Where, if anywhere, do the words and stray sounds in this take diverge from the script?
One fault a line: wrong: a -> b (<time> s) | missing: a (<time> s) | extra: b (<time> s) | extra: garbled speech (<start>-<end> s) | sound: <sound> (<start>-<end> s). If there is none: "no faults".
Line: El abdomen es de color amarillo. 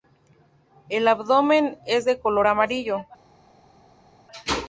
no faults